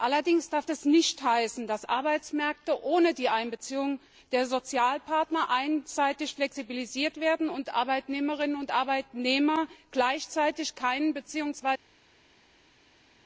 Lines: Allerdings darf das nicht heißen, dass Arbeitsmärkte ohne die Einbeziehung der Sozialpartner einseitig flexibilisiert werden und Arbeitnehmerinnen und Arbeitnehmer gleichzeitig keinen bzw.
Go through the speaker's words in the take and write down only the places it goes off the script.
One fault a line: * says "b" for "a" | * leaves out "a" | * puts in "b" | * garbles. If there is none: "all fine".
all fine